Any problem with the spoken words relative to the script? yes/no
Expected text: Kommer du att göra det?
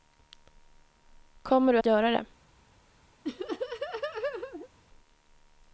no